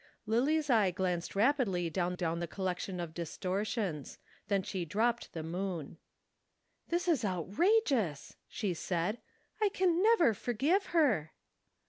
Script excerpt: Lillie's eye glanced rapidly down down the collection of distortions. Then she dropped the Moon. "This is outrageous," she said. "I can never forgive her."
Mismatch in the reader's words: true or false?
false